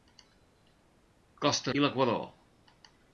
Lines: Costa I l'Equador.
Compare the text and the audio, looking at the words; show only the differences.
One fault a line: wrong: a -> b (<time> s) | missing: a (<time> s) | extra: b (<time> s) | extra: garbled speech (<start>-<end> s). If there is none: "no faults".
no faults